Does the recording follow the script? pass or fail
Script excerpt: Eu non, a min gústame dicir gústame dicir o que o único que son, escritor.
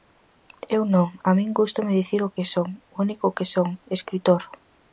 fail